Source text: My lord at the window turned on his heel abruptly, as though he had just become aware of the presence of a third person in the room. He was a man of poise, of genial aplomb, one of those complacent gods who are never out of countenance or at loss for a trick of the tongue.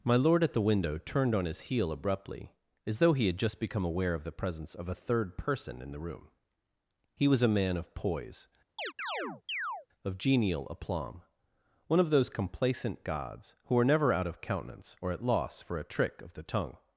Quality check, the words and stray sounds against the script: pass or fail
fail